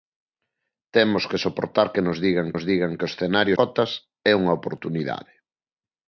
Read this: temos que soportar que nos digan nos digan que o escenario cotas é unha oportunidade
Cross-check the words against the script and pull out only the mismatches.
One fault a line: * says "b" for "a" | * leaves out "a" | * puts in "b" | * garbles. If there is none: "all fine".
all fine